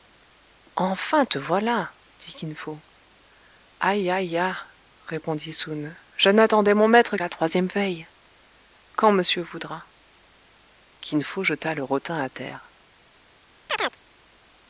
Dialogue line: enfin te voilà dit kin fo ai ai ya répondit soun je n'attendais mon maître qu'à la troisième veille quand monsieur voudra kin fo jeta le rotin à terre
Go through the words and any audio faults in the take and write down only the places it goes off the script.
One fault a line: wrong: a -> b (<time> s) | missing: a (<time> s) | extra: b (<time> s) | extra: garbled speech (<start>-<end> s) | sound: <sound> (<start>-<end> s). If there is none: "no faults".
missing: qu'à (7.2 s)
sound: chirp (13.7-14.0 s)